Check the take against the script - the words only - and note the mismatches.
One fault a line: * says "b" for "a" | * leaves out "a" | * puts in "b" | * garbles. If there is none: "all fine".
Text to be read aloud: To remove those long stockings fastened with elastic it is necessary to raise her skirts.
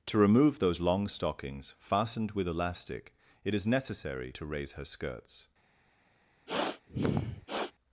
all fine